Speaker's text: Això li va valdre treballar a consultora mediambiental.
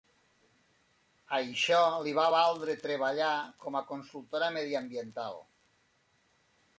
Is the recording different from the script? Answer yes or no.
yes